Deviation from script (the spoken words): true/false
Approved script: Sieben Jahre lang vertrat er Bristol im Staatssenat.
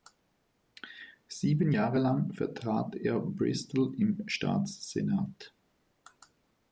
false